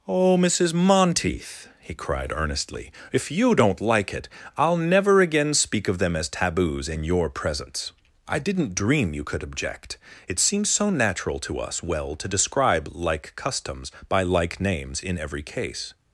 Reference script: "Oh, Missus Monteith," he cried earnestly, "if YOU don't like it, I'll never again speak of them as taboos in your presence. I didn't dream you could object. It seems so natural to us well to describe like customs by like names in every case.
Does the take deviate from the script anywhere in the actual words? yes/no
no